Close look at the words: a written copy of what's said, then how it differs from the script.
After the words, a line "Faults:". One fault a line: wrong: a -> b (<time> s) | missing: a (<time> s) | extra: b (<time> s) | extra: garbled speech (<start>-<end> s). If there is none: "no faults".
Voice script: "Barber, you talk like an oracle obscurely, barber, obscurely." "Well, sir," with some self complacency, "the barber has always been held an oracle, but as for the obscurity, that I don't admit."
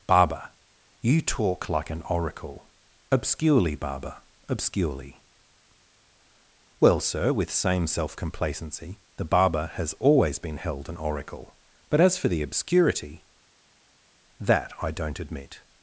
"Barber, you talk like an oracle obscurely, barber, obscurely." "Well, sir," with same self complacency, "the barber has always been held an oracle, but as for the obscurity, that I don't admit."
Faults:
wrong: some -> same (7.5 s)